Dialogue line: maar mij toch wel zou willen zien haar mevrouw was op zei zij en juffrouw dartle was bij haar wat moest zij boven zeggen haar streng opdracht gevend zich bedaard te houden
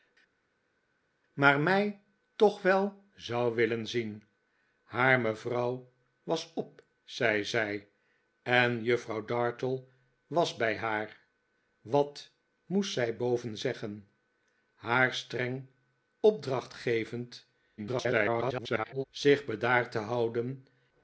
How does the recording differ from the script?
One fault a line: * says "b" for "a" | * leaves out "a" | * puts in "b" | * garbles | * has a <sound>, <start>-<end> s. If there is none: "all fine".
* garbles